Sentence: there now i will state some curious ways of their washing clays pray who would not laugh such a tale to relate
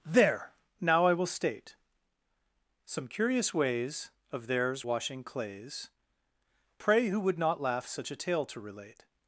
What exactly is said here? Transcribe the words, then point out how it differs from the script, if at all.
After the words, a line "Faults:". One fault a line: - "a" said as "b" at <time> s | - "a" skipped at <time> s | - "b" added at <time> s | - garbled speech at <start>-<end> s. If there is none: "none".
there now i will state some curious ways of theirs washing clays pray who would not laugh such a tale to relate
Faults:
- "their" said as "theirs" at 4.5 s